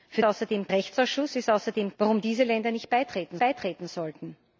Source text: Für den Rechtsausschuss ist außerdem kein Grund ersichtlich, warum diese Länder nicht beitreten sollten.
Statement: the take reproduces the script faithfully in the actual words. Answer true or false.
false